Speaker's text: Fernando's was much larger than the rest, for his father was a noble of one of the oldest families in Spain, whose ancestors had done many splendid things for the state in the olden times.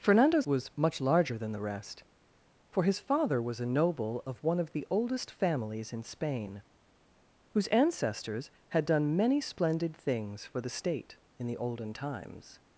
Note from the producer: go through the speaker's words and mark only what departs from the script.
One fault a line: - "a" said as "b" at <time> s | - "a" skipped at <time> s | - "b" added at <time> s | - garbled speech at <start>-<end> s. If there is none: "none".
none